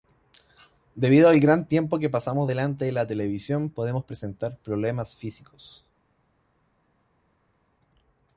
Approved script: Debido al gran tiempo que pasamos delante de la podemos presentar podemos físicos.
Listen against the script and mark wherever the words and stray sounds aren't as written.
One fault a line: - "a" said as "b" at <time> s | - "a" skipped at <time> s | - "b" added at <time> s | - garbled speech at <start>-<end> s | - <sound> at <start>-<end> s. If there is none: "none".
- "televisión" added at 3.0 s
- "podemos" said as "problemas" at 4.6 s